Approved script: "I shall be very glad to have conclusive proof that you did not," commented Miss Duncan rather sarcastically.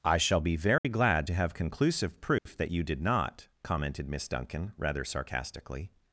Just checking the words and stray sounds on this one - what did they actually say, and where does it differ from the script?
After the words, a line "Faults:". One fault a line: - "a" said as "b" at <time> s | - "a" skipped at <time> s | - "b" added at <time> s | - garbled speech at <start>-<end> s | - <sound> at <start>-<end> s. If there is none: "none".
"I shall be very glad to have conclusive proof that you did not," commented Miss Duncan rather sarcastically.
Faults:
- dropout at 0.8-0.8 s
- dropout at 2.4-2.5 s